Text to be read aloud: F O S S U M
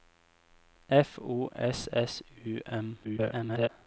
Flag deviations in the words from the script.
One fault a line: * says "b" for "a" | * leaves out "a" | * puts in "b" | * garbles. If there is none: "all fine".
* garbles